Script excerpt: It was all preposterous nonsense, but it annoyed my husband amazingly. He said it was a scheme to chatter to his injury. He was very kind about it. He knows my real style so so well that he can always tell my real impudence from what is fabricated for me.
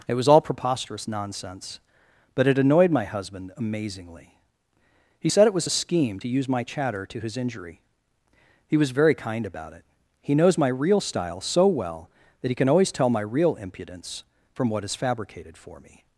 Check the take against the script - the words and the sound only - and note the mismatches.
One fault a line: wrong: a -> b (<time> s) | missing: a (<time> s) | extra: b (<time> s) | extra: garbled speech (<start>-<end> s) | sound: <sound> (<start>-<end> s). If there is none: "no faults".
extra: use my (6.3 s)
missing: so (11.7 s)